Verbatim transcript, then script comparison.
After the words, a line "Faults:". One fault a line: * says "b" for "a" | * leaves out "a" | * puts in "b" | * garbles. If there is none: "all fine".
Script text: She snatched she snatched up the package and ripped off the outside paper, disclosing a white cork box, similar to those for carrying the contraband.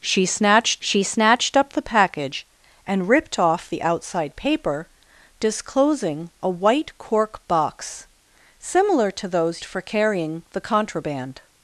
She snatched she snatched up the package and ripped off the outside paper, disclosing a white cork box, similar to those for carrying the contraband.
Faults:
all fine